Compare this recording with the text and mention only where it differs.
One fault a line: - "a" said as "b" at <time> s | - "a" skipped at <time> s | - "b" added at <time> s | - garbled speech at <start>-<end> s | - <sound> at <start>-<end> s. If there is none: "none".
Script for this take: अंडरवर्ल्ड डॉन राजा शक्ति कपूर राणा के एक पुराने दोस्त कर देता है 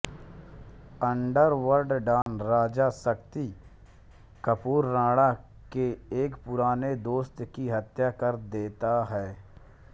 - dropout at 2.2-2.3 s
- "की हत्या" added at 7.5 s